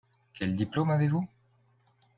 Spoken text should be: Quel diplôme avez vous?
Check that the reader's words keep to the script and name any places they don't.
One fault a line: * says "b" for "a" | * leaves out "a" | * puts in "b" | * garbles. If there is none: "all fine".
all fine